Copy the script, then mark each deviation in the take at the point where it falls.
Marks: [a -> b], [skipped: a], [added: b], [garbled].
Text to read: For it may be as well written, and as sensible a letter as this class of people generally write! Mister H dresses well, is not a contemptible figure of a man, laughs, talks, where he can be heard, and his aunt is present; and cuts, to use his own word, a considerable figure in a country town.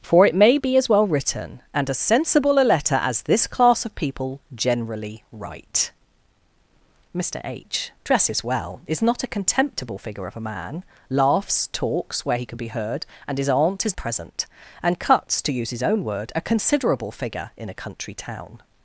For it may be as well written, and as sensible a letter as this class of people generally write! Mister H dresses well, is not a contemptible figure of a man, laughs, talks, where he can be heard, and his aunt is present; and cuts, to use his own word, a considerable figure in a country town.